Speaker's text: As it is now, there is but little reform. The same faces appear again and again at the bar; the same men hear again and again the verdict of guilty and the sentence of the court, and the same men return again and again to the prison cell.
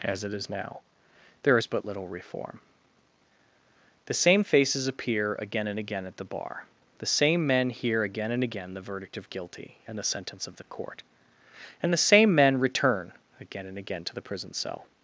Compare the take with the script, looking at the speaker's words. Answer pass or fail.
pass